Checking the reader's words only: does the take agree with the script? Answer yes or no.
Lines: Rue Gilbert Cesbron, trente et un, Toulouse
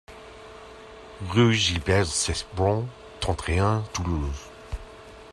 yes